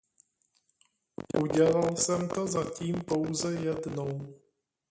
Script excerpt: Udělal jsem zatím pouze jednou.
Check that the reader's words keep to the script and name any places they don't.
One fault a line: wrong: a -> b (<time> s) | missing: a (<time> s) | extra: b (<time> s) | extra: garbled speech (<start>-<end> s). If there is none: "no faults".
extra: to (2.3 s)